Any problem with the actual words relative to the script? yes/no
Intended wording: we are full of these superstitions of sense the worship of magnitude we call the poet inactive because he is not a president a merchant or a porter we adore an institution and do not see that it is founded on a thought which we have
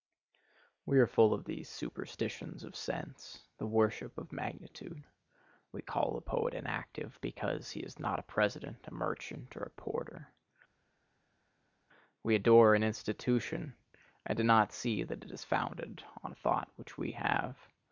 no